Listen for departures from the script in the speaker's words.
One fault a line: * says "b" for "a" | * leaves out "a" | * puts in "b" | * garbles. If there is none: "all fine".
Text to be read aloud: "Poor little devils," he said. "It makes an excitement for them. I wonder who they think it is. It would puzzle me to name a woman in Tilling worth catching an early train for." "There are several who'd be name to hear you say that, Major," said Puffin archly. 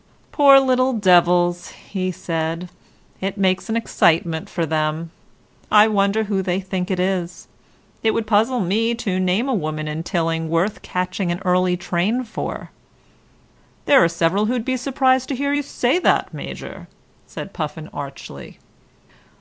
* says "surprised" for "name"